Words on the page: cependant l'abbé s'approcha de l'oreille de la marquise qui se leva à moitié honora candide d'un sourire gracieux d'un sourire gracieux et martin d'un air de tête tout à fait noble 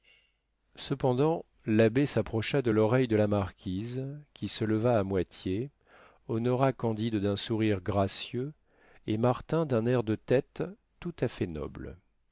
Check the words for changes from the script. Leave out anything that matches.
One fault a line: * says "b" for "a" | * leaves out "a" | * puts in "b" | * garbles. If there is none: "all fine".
* leaves out "d'un sourire gracieux"